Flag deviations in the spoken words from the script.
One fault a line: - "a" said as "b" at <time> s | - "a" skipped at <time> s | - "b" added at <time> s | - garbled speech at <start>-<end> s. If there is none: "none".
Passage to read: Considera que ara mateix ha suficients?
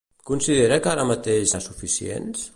none